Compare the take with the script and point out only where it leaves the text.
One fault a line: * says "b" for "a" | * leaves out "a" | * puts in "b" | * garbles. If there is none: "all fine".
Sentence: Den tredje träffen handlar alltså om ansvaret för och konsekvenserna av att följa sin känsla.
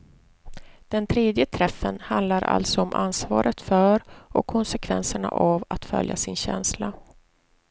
all fine